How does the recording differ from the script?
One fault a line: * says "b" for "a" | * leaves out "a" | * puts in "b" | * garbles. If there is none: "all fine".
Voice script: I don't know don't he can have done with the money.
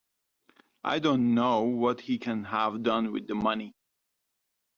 * says "what" for "don't"